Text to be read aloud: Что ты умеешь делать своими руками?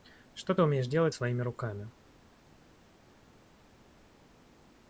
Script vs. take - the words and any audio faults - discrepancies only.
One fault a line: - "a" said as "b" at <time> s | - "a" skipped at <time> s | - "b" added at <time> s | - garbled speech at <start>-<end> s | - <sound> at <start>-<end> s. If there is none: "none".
none